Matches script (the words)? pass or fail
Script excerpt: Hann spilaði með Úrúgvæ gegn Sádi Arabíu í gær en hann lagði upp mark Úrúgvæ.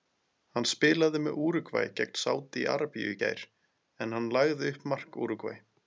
pass